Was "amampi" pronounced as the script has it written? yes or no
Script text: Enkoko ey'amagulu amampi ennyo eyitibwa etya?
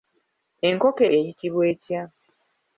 no